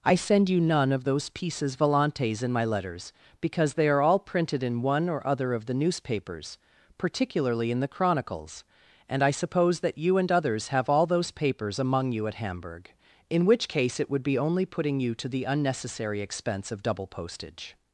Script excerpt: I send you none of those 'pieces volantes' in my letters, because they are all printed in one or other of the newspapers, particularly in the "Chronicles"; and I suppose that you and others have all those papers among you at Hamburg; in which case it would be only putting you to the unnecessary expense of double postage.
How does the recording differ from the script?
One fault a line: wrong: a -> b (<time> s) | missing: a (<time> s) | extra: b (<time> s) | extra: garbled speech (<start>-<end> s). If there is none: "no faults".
no faults